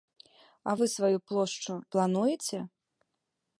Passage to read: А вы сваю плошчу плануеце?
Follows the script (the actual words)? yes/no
yes